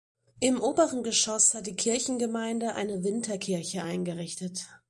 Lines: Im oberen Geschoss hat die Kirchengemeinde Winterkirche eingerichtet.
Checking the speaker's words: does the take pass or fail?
fail